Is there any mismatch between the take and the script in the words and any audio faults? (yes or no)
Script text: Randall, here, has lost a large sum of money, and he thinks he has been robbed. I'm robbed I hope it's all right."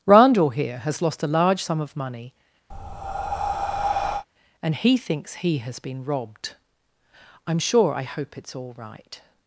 yes